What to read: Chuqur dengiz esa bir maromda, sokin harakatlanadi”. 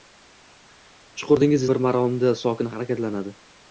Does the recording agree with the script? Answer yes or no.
no